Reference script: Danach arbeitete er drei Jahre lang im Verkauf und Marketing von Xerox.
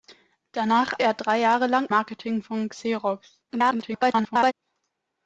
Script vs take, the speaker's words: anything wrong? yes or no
yes